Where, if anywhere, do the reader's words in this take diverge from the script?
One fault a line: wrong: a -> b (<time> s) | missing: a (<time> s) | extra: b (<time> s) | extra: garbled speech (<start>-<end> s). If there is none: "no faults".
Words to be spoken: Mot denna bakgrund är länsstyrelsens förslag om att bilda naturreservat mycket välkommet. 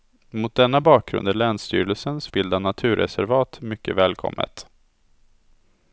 missing: förslag om att (2.3 s)